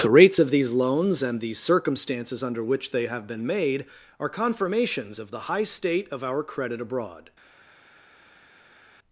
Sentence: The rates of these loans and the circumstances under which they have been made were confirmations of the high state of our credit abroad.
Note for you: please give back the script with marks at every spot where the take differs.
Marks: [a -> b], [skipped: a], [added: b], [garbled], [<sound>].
The rates of these loans and the circumstances under which they have been made [were -> are] confirmations of the high state of our credit abroad.